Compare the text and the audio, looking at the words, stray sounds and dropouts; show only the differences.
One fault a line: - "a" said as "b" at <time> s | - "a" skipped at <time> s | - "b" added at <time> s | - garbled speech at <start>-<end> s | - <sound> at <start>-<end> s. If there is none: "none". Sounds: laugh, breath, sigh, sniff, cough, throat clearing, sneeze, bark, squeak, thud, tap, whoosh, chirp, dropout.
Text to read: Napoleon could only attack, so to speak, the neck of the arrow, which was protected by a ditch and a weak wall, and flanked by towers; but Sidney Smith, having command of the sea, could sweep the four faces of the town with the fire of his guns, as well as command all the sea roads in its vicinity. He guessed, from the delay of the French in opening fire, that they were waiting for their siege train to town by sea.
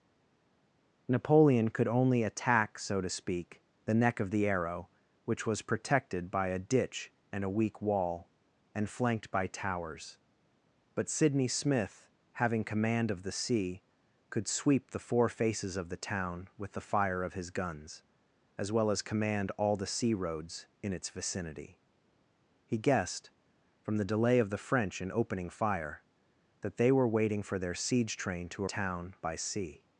none